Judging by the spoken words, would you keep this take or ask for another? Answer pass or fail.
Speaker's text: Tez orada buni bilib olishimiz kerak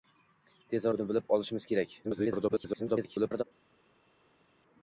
fail